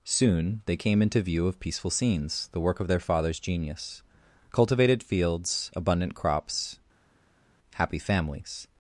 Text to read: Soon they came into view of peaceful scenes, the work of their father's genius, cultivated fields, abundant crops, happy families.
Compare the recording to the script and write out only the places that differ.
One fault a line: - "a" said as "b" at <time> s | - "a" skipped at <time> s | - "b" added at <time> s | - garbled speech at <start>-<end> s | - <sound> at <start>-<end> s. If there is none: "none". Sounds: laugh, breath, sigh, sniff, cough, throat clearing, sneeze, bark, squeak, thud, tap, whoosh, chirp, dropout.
none